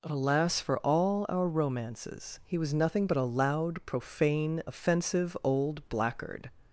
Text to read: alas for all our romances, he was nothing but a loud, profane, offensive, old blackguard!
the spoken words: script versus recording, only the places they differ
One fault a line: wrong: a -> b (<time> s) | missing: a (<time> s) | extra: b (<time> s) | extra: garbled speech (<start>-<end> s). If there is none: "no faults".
no faults